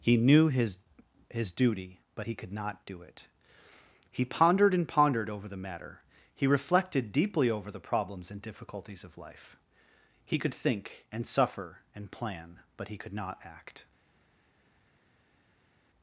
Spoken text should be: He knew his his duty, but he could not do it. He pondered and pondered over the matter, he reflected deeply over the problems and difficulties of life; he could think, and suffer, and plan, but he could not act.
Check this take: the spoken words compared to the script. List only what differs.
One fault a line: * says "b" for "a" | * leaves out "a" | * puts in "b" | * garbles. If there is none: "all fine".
all fine